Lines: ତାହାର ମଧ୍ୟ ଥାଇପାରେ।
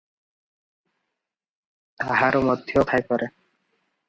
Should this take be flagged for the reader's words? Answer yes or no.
no